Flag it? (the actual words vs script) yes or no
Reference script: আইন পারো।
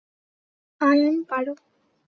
no